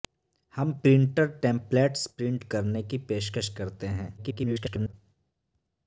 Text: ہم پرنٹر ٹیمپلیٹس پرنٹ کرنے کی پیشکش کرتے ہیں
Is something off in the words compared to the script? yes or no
yes